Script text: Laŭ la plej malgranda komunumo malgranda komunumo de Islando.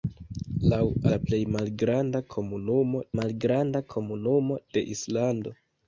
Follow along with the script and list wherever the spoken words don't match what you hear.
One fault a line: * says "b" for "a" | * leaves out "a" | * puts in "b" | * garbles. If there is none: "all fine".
all fine